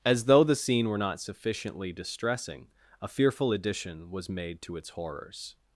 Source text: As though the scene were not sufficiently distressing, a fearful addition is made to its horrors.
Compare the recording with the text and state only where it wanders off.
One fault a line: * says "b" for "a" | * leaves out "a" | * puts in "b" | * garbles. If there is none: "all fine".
* says "was" for "is"